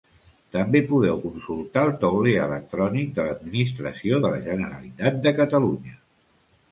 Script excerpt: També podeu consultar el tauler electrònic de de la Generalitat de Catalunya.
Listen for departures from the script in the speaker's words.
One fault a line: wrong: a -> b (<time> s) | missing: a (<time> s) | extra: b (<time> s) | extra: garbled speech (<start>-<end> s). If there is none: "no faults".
extra: l'Administració (3.2 s)